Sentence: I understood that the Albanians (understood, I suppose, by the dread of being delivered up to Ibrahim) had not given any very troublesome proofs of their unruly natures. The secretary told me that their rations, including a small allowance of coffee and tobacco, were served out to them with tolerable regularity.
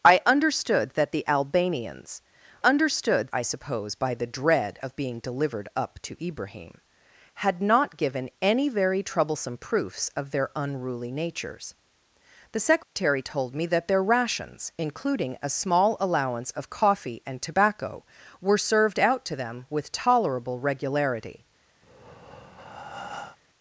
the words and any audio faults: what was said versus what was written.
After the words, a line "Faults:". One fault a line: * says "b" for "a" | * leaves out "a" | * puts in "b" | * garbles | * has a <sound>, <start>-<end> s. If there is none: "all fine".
I understood that the Albanians (understood, I suppose, by the dread of being delivered up to Ibrahim) had not given any very troublesome proofs of their unruly natures. The secretary told me that their rations, including a small allowance of coffee and tobacco, were served out to them with tolerable regularity.
Faults:
* has a dropout, 12.8-13.0 s
* has a breath, 21.8-23.4 s